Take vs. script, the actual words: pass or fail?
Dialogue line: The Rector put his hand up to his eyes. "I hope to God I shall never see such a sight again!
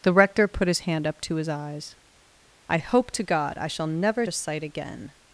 fail